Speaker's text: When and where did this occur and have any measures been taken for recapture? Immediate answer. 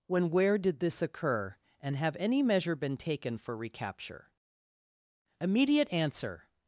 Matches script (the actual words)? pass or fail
fail